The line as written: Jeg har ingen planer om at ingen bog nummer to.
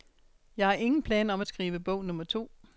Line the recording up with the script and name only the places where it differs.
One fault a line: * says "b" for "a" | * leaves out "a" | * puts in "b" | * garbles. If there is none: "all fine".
* says "skrive" for "ingen"